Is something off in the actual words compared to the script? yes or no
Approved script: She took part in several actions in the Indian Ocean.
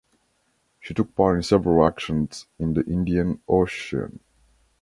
no